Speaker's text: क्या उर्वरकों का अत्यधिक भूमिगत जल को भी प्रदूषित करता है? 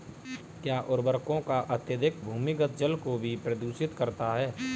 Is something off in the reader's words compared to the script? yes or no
no